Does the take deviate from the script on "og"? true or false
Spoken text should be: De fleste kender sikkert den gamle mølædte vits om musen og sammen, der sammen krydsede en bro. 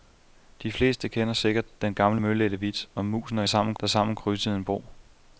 false